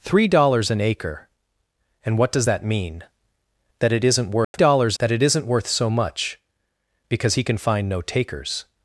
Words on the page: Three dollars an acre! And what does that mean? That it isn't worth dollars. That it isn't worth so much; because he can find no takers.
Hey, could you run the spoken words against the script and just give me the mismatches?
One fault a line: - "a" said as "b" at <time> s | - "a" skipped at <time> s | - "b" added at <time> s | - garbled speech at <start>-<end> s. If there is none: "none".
none